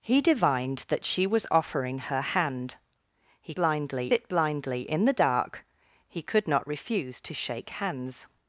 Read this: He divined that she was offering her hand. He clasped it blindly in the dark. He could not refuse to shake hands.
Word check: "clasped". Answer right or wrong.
wrong